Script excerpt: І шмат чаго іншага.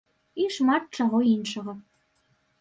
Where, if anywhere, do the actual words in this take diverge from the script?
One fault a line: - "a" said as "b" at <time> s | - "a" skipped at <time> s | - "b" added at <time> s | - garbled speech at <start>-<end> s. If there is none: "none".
none